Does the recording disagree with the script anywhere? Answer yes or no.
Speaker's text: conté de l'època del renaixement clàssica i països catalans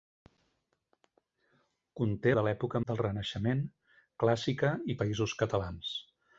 no